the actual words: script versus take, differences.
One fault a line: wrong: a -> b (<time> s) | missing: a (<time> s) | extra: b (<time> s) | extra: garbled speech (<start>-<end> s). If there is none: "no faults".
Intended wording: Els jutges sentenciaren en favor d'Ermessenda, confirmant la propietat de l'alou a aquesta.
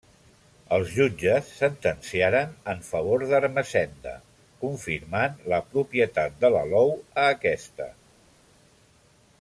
no faults